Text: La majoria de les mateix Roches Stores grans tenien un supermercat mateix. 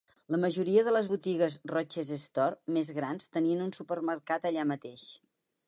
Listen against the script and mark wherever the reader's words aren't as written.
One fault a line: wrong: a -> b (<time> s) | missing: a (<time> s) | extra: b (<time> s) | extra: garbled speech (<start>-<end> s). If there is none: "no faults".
wrong: mateix -> botigues (1.1 s)
extra: més (2.8 s)
extra: allà (4.5 s)